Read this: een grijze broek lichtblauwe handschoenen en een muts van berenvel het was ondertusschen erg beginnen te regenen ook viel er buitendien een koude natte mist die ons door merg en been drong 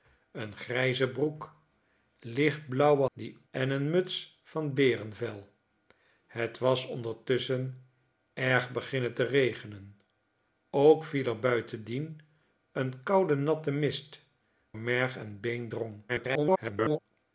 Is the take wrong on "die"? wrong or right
wrong